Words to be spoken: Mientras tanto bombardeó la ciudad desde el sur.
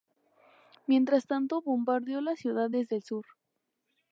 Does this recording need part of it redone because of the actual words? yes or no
no